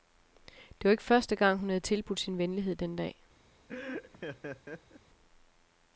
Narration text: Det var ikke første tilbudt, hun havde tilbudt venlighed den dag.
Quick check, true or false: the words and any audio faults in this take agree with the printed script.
false